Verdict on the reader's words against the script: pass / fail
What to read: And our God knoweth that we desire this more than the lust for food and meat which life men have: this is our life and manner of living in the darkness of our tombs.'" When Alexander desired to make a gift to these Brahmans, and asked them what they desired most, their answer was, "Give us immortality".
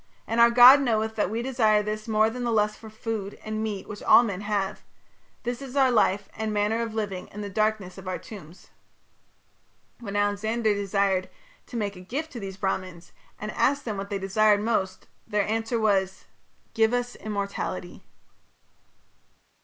fail